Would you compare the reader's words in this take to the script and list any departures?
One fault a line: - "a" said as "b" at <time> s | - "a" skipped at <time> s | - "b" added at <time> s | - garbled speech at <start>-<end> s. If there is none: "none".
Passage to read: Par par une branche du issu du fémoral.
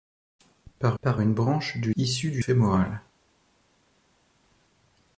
none